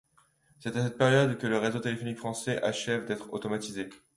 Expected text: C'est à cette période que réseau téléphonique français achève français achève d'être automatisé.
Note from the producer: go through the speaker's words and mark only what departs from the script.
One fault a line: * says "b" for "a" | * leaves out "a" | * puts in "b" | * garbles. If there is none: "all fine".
* puts in "le"
* leaves out "français achève"